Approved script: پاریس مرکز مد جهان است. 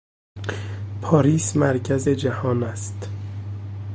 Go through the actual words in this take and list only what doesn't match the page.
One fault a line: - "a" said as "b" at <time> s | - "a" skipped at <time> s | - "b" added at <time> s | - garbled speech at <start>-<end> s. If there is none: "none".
- "مد" skipped at 2.1 s